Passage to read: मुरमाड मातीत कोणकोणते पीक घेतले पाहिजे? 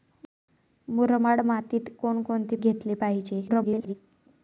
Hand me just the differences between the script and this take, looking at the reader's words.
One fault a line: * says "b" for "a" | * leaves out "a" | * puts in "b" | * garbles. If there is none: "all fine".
* leaves out "पीक"
* garbles